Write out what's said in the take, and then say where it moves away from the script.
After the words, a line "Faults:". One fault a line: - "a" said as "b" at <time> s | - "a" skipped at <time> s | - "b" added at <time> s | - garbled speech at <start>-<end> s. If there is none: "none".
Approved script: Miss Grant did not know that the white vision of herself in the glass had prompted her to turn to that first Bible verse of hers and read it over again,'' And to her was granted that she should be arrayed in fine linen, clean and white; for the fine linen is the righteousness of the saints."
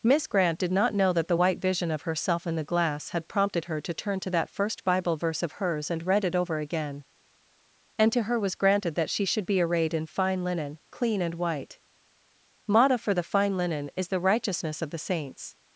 Miss Grant did not know that the white vision of herself in the glass had prompted her to turn to that first Bible verse of hers and read it over again,'' And to her was granted that she should be arrayed in fine linen, clean and white; motto for the fine linen is the righteousness of the saints."
Faults:
- "motto" added at 12.7 s